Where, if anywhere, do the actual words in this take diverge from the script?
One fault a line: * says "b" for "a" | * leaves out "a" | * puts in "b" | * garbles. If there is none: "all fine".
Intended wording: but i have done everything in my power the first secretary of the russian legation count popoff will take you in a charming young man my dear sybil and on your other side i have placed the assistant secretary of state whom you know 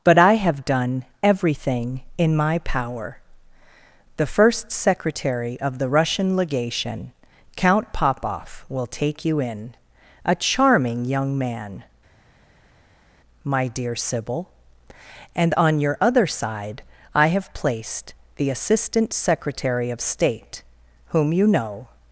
all fine